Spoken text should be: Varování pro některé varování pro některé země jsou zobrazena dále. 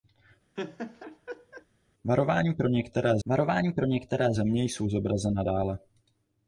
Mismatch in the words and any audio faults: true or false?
true